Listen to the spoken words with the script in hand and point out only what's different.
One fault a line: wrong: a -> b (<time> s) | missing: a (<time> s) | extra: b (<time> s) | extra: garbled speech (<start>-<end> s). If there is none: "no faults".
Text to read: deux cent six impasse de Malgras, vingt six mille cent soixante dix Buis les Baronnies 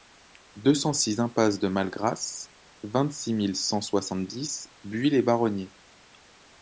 no faults